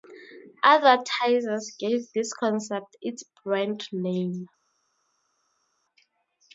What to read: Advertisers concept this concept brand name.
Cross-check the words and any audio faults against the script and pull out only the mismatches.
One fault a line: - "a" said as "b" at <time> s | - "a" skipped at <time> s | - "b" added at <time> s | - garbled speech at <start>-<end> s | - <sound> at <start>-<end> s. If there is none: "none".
- "concept" said as "gave" at 1.8 s
- "its" added at 3.0 s